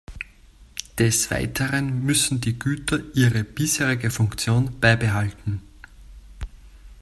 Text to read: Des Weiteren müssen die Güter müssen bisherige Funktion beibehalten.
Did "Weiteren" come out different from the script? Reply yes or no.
no